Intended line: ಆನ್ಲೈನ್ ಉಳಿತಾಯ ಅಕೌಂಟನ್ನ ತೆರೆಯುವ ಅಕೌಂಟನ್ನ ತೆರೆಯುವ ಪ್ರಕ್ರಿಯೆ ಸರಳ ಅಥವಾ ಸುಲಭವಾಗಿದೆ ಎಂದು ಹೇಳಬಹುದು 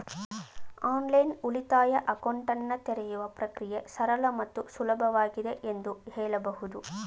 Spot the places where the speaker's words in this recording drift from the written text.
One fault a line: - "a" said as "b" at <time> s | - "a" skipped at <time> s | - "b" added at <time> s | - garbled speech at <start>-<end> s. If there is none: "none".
- "ಅಕೌಂಟನ್ನ ತೆರೆಯುವ" skipped at 3.2 s
- "ಅಥವಾ" said as "ಮತ್ತು" at 4.4 s